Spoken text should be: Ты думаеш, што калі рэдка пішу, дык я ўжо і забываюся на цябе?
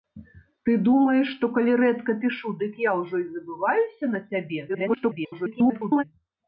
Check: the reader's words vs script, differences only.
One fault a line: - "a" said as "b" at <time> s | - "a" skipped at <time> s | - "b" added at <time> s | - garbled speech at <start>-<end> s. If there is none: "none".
- garbled speech at 4.7-6.0 s